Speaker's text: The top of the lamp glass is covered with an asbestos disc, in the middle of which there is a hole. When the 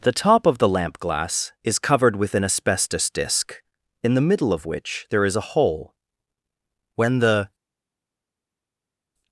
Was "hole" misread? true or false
false